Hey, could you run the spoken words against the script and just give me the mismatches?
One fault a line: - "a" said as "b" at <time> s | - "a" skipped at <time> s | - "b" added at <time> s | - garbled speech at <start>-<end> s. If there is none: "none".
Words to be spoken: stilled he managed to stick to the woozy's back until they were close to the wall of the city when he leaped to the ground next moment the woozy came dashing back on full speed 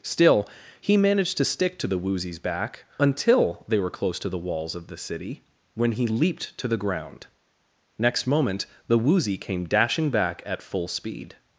- "stilled" said as "still" at 0.0 s
- "wall" said as "walls" at 4.4 s
- "on" said as "at" at 10.5 s